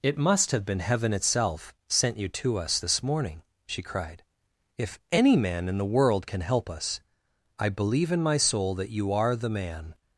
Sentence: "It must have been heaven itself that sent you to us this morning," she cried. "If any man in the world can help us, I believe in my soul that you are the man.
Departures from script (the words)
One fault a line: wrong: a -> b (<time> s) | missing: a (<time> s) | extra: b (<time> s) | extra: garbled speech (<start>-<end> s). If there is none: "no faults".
missing: that (1.8 s)